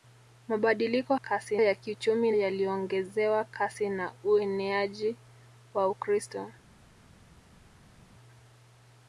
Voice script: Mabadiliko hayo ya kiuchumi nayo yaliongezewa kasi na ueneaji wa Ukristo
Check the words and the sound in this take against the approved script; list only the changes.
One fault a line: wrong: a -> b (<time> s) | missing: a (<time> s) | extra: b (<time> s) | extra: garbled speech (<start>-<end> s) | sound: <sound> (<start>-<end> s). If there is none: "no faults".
wrong: hayo -> kasi (1.1 s)
missing: nayo (2.3 s)